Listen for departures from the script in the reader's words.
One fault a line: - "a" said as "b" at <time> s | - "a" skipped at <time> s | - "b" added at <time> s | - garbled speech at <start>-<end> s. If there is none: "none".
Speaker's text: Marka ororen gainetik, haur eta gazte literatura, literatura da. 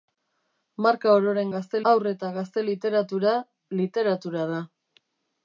- "gainetik" said as "gazte" at 1.5 s